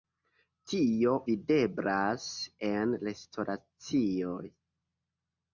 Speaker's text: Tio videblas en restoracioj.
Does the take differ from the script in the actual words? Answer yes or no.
no